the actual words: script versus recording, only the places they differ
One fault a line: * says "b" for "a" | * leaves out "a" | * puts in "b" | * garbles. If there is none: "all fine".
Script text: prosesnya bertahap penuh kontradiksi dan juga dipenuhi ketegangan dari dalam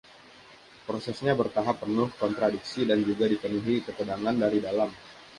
all fine